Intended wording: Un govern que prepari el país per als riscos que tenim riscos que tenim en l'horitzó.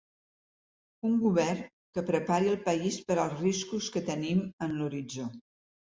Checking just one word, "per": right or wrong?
right